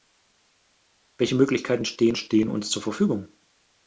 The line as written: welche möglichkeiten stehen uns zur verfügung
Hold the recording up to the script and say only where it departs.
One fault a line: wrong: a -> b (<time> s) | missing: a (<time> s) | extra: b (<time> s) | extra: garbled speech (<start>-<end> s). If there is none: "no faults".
extra: stehen (2.1 s)